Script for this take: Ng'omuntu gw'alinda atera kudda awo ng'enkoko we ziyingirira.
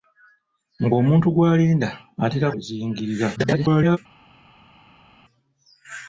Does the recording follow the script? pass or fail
fail